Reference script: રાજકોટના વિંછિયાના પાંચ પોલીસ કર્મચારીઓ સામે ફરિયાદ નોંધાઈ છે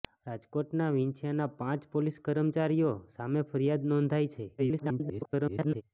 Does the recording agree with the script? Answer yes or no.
no